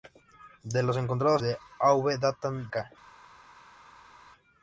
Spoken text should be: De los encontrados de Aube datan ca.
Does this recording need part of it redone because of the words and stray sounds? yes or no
no